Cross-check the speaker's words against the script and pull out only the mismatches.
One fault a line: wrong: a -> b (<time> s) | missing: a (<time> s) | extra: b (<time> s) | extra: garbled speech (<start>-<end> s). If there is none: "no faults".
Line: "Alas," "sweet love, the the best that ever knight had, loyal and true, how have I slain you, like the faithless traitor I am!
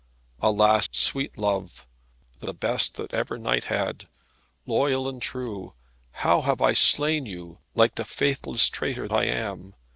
no faults